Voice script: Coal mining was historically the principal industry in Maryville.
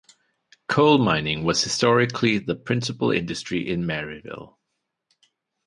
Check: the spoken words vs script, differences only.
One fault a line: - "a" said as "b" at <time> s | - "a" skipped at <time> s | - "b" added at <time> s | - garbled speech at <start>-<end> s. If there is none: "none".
none